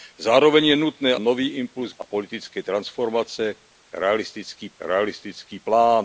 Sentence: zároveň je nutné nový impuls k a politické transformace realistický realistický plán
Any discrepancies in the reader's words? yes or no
no